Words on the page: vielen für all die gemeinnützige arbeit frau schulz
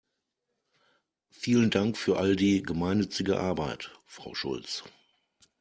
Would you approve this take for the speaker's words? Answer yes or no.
no